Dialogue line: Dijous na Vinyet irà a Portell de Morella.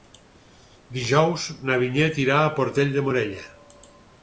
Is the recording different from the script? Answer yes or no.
no